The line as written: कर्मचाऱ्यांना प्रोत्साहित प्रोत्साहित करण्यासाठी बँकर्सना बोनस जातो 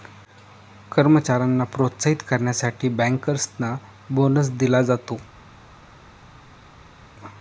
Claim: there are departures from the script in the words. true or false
true